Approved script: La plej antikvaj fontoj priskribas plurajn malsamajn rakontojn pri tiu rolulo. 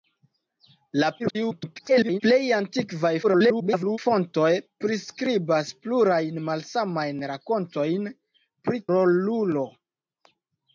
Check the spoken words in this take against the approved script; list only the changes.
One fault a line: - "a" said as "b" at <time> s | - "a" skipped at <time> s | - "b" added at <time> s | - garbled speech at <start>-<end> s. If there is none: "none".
- garbled speech at 1.2-2.2 s
- garbled speech at 3.2-4.0 s
- "tiu" skipped at 8.8 s